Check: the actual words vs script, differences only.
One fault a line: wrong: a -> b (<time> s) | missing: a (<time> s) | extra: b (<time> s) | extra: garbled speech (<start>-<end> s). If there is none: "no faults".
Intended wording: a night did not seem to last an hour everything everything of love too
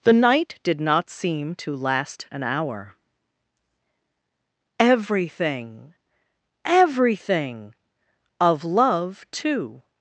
wrong: a -> the (0.0 s)